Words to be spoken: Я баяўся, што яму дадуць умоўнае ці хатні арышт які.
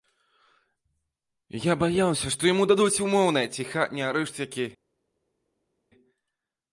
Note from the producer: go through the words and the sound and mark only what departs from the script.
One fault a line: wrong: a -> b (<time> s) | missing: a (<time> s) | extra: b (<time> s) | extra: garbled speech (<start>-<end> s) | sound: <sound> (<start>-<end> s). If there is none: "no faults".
no faults